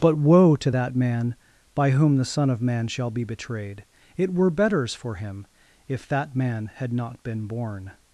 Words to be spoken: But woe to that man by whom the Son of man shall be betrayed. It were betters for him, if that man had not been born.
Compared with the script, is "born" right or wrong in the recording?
right